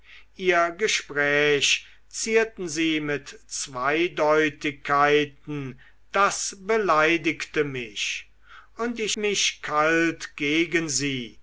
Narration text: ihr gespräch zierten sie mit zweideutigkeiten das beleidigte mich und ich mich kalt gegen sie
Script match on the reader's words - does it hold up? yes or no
yes